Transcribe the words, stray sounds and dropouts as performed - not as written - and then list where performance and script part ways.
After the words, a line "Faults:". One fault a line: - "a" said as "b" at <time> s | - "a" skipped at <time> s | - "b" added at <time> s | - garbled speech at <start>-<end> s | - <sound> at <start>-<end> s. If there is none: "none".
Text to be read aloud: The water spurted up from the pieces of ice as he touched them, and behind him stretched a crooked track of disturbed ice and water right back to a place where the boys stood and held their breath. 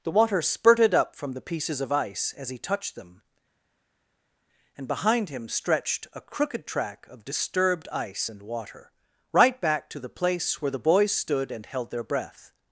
The water spurted up from the pieces of ice as he touched them, and behind him stretched a crooked track of disturbed ice and water right back to the place where the boys stood and held their breath.
Faults:
- "a" said as "the" at 10.0 s